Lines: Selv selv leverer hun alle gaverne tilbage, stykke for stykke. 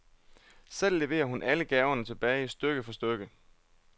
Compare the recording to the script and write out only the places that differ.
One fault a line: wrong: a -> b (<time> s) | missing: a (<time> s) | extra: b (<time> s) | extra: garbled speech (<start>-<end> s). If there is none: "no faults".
missing: selv (1.0 s)